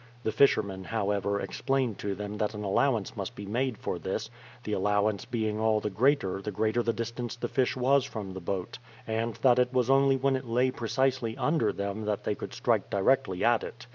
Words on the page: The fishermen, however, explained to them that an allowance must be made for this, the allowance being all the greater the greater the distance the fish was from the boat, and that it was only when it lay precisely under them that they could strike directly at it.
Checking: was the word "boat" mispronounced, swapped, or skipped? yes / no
no